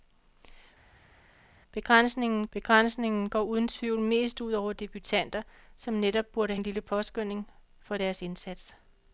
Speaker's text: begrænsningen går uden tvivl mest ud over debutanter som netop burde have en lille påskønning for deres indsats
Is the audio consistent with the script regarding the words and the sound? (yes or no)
no